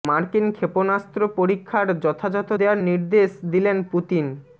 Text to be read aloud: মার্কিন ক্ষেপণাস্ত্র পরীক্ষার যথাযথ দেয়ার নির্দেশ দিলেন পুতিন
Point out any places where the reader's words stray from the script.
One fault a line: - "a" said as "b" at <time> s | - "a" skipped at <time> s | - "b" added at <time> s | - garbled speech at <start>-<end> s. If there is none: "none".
none